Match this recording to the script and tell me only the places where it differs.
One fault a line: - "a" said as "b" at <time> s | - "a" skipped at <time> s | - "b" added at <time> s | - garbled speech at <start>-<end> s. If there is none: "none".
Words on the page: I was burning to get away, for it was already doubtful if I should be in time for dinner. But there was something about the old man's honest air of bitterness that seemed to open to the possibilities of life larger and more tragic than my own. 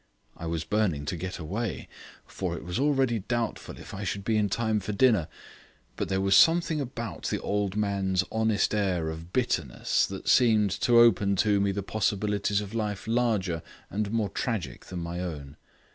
- "me" added at 11.6 s